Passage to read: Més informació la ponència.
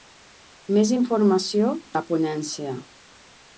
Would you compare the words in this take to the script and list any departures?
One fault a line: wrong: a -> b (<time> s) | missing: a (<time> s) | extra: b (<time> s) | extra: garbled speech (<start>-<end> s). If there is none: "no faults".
no faults